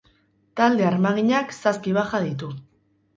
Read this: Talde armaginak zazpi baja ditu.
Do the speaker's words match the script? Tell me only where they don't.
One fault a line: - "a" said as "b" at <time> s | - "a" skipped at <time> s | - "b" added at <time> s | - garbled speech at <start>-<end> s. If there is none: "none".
none